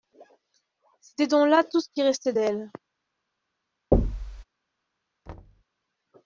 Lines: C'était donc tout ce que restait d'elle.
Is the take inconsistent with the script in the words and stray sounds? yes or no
yes